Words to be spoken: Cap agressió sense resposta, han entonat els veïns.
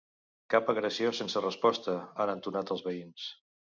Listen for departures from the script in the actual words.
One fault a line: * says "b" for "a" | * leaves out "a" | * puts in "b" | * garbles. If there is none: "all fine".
all fine